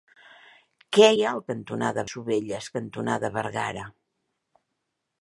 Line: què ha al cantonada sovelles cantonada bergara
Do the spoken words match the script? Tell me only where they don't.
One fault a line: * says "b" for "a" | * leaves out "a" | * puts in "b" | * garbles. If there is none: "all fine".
all fine